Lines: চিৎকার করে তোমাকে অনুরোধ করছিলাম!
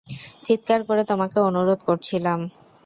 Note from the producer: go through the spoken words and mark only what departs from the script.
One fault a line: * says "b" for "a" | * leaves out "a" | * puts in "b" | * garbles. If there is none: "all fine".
all fine